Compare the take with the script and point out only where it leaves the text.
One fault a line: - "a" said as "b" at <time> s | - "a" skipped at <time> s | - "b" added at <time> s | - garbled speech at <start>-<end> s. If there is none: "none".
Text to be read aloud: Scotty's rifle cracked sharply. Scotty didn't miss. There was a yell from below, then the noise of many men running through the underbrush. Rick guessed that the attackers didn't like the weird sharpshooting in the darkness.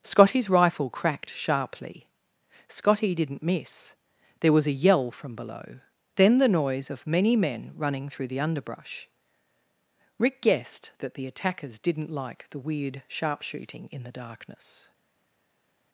none